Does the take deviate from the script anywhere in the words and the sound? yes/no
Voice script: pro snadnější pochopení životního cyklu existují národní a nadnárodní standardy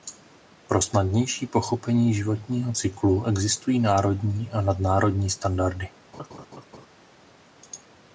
yes